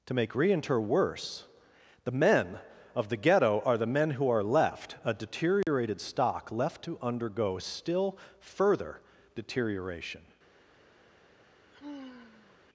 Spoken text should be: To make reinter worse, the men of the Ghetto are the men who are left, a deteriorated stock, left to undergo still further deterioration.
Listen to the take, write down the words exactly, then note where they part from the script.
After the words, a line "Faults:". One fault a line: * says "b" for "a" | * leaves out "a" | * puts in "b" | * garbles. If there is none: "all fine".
To make reinter worse, the men of the Ghetto are the men who are left, a deteriorated stock, left to undergo still further deterioration.
Faults:
all fine